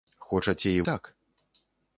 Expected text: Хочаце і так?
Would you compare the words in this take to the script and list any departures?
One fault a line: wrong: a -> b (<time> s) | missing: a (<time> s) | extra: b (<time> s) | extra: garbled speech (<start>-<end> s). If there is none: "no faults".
no faults